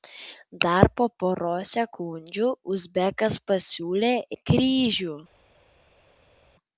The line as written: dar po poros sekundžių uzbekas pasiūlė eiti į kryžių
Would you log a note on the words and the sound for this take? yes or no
yes